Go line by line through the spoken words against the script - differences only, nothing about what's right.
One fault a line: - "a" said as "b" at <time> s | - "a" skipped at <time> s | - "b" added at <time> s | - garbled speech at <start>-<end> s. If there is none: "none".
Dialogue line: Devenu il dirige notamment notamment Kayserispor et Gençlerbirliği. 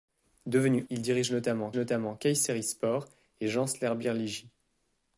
none